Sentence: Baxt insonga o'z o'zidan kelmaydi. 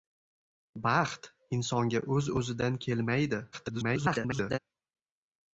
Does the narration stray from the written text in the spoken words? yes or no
yes